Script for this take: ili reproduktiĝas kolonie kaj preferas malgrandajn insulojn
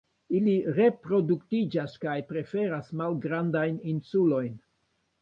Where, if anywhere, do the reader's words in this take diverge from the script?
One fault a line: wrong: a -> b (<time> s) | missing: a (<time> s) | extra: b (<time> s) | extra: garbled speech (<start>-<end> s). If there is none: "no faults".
missing: kolonie (1.9 s)